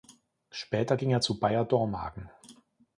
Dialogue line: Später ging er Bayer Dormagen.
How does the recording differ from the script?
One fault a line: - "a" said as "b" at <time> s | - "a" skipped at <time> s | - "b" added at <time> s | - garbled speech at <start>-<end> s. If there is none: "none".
- "zu" added at 1.2 s